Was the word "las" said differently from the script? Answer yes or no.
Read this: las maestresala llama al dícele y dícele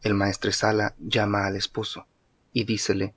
yes